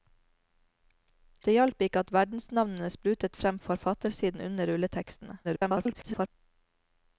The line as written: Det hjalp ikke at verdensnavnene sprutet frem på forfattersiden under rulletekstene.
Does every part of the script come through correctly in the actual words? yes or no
no